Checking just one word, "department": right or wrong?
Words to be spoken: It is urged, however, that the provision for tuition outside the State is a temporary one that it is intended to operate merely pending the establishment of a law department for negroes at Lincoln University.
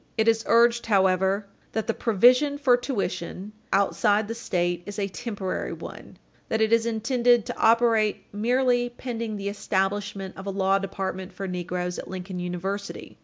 right